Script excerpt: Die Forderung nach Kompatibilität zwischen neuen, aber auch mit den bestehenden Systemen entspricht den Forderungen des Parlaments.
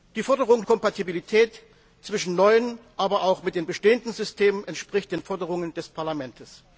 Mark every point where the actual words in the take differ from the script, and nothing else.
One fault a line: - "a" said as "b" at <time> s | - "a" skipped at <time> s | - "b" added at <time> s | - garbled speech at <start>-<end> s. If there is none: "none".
- "nach" skipped at 0.7 s